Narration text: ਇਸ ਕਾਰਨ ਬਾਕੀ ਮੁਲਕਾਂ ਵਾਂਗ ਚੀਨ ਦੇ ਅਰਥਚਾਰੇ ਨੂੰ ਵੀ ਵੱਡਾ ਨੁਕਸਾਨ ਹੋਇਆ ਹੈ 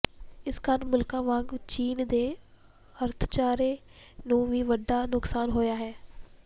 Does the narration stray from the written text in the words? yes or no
yes